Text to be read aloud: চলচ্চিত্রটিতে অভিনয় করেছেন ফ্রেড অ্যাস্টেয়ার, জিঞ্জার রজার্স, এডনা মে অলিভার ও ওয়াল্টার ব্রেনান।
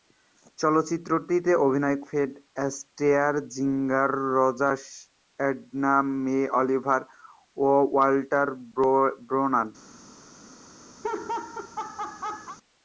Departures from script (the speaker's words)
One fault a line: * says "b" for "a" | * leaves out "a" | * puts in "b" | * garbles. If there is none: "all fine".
* leaves out "করেছেন"